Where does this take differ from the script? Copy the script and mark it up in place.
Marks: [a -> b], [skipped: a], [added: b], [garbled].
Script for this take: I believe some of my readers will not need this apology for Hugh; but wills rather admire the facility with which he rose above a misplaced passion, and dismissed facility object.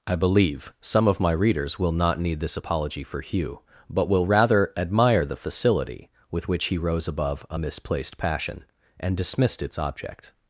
I believe some of my readers will not need this apology for Hugh; but [wills -> will] rather admire the facility with which he rose above a misplaced passion, and dismissed [facility -> its] object.